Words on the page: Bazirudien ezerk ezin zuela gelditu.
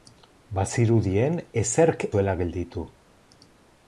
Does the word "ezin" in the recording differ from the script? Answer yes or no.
yes